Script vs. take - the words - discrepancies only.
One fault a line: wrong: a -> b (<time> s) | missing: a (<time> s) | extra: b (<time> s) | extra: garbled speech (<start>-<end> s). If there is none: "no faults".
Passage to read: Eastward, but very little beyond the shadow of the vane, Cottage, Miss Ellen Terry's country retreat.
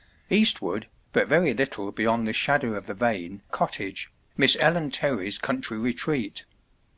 no faults